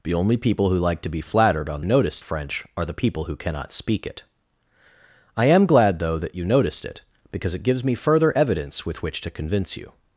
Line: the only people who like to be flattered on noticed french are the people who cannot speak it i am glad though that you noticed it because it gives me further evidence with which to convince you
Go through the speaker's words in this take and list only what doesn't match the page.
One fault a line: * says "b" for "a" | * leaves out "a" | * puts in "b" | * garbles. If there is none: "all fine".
all fine